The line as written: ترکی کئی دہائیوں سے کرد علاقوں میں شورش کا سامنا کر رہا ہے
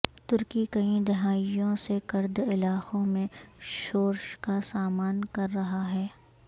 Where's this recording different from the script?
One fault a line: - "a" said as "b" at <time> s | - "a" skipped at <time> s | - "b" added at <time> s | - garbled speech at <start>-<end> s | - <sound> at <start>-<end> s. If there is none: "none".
none